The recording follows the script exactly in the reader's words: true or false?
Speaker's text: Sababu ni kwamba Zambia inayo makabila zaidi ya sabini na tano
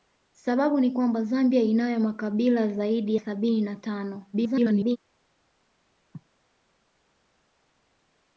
false